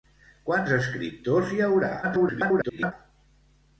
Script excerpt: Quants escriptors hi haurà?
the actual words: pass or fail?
fail